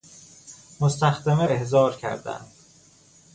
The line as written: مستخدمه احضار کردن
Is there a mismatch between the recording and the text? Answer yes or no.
no